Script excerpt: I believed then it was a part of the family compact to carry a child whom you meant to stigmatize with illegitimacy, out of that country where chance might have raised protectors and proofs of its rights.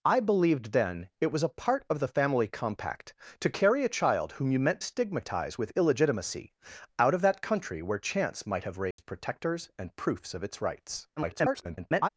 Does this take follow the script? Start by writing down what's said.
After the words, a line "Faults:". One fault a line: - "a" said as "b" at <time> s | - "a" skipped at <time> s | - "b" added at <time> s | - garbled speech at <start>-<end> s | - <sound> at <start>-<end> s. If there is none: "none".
I believed then it was a part of the family compact to carry a child whom you meant stigmatize with illegitimacy, out of that country where chance might have raised protectors and proofs of its rights. [garbled]
Faults:
- "to" skipped at 4.8 s
- dropout at 8.9-9.0 s
- garbled speech at 11.2-12.1 s